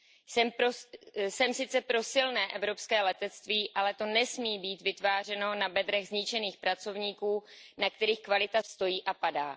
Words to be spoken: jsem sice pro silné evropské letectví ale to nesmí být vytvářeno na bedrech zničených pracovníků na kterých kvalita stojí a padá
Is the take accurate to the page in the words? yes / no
yes